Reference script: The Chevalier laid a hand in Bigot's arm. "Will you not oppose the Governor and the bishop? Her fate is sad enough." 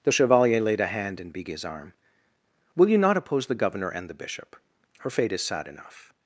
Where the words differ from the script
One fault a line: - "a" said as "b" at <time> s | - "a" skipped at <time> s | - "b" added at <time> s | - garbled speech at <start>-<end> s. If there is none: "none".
none